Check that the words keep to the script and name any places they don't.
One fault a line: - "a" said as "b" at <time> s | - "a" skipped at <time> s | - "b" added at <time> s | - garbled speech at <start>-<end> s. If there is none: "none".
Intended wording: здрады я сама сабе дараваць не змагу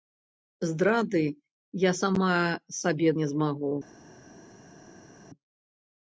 - "дараваць" skipped at 3.1 s